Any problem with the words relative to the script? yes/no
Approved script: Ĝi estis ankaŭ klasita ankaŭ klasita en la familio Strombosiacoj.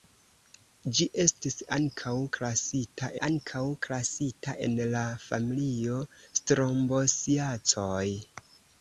no